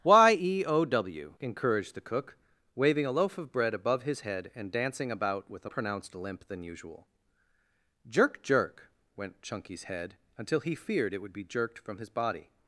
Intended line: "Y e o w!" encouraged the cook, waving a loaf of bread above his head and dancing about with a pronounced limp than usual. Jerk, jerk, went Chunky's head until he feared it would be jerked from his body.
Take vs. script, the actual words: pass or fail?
pass